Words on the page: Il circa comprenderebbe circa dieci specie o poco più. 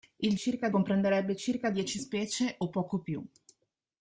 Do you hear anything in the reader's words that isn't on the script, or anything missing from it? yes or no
no